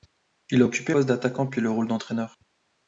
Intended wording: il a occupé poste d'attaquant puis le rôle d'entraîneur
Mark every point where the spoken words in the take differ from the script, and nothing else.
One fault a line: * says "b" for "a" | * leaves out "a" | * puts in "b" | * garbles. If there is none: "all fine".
all fine